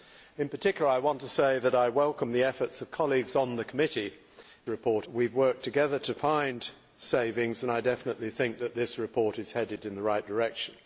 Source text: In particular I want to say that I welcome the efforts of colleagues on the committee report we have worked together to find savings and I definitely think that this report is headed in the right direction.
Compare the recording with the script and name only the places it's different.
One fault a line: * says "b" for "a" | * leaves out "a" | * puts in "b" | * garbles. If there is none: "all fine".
all fine